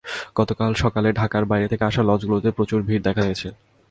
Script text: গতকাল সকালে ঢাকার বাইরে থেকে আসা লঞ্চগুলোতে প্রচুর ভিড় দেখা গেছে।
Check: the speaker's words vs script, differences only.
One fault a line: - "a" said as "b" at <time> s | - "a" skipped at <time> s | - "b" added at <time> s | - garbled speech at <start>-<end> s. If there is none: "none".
none